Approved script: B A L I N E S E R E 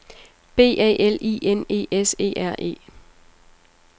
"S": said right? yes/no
yes